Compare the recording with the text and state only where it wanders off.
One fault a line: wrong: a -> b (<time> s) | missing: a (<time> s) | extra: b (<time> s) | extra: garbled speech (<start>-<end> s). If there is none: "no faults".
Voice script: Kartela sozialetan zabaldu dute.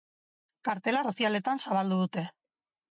no faults